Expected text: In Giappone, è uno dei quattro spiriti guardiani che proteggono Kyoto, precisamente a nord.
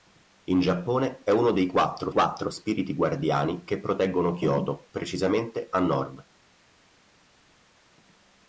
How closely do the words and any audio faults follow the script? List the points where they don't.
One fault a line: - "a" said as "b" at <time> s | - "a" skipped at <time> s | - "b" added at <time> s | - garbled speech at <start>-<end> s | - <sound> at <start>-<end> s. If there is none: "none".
- "quattro" added at 2.1 s